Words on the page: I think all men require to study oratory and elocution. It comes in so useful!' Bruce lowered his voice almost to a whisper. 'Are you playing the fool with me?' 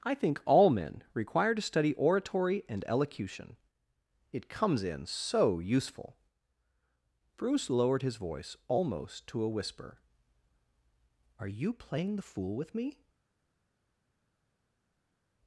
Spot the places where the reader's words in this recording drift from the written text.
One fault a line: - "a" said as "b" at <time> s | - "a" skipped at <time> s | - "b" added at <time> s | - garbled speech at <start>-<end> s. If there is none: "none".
none